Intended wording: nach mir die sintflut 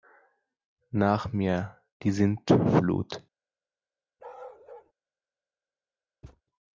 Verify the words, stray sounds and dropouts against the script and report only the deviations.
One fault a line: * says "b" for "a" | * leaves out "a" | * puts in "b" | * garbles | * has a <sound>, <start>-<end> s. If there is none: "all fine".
* has a bark, 4.2-4.9 s
* has a thud, 6.2-6.4 s